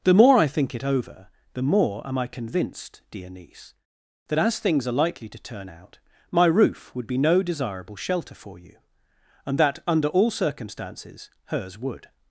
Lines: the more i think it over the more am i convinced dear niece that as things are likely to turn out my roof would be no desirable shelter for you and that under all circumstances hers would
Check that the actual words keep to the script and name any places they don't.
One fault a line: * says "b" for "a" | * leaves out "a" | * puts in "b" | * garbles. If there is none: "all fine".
all fine